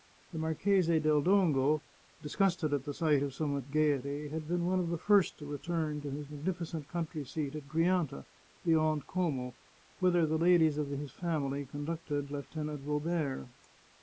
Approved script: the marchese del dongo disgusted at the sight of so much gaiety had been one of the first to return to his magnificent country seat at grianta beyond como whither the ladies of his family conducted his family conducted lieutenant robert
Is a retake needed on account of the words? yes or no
yes